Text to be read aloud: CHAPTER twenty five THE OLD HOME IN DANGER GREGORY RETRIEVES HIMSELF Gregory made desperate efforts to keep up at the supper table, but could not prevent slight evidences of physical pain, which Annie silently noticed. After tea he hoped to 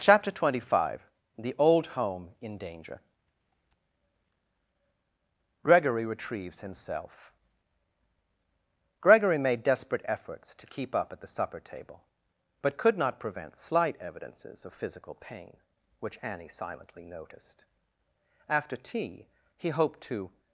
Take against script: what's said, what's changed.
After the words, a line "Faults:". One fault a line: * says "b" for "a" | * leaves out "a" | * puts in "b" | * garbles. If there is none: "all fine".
CHAPTER twenty five THE OLD HOME IN DANGER GREGORY RETRIEVES HIMSELF Gregory made desperate efforts to keep up at the supper table, but could not prevent slight evidences of physical pain, which Annie silently noticed. After tea he hoped to
Faults:
all fine